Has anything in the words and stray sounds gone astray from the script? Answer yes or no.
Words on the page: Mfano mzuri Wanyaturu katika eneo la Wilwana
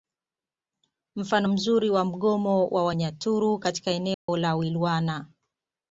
yes